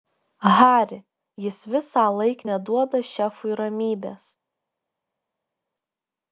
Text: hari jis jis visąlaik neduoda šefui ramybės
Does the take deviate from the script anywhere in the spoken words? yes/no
yes